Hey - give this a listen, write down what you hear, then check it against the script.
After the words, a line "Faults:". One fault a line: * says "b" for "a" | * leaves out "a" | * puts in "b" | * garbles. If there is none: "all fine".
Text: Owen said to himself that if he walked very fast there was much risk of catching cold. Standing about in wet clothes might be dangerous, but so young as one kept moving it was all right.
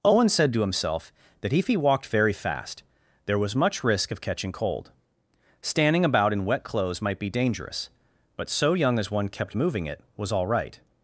Owen said to himself that if he walked very fast there was much risk of catching cold. Standing about in wet clothes might be dangerous, but so young as one kept moving it was all right.
Faults:
all fine